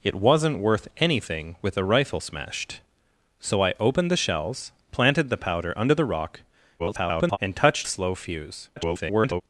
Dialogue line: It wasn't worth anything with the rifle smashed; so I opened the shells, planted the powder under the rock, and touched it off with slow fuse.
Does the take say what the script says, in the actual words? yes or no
no